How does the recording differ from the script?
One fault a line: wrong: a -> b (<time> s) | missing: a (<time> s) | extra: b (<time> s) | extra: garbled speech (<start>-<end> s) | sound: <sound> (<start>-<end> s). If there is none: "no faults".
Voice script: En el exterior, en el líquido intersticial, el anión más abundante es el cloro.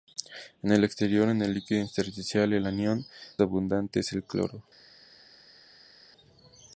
missing: más (3.0 s)